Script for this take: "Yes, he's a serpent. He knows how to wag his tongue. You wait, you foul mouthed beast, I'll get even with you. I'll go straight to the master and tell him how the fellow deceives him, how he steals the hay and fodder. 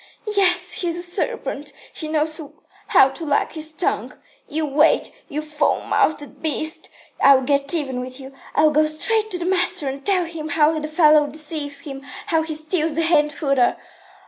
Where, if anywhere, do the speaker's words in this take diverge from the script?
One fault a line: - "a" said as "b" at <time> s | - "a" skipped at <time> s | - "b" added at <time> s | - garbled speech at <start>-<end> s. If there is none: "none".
none